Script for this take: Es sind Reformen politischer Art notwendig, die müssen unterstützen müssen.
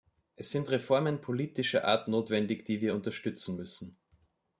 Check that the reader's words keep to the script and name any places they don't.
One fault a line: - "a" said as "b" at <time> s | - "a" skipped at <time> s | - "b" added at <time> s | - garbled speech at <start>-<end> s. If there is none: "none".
- "müssen" said as "wir" at 2.8 s